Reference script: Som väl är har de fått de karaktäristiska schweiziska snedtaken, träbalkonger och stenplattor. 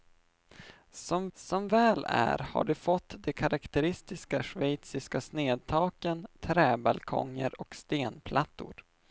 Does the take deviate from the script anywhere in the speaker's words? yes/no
yes